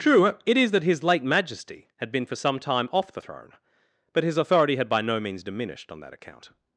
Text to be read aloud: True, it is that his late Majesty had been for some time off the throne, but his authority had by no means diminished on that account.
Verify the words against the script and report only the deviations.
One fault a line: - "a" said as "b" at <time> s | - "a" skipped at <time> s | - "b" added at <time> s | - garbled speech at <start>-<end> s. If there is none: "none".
none